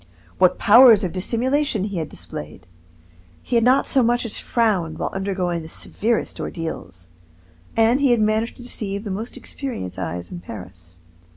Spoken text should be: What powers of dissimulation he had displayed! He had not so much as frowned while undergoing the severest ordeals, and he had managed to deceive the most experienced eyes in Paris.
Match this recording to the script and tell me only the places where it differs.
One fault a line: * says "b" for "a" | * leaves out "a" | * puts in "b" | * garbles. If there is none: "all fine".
all fine